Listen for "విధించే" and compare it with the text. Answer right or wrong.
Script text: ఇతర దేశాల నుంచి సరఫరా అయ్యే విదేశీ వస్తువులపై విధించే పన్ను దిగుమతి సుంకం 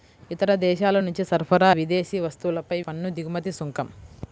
wrong